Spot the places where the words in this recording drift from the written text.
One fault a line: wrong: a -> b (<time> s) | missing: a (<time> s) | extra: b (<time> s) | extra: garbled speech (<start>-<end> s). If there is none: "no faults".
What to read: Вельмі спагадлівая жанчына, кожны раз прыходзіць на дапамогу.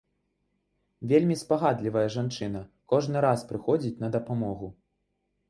no faults